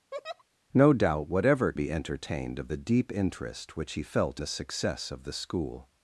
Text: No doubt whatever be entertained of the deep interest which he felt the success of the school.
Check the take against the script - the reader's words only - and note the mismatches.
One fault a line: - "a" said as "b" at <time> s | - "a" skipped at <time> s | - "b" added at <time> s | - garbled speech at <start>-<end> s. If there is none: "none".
none